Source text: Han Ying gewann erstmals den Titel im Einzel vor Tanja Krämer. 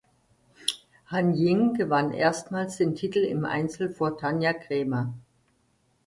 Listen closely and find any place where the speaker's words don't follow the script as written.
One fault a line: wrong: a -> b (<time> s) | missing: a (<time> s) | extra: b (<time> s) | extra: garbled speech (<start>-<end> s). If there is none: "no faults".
no faults